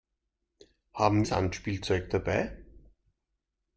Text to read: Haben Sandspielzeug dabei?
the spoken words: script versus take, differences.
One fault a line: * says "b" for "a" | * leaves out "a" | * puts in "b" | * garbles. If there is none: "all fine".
all fine